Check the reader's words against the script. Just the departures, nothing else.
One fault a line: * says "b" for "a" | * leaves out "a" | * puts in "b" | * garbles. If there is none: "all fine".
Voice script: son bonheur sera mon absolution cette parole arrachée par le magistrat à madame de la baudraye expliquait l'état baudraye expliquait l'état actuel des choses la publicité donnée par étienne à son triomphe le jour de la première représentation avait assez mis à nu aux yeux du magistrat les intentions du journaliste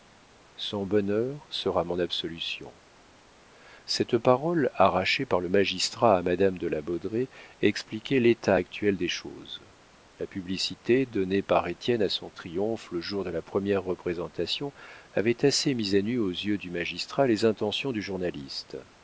* leaves out "baudraye expliquait l'état"